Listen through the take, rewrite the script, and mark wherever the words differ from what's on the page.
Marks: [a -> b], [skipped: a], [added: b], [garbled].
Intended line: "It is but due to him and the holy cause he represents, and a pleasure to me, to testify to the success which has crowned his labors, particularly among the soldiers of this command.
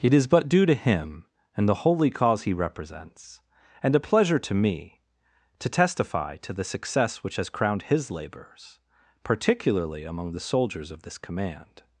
"It is but due to him and the holy cause he represents, and a pleasure to me, to testify to the success which has crowned his labors, particularly among the soldiers of this command.